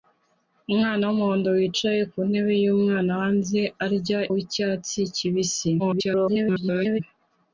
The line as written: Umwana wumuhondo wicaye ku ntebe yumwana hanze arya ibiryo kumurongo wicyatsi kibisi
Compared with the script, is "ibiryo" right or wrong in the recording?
wrong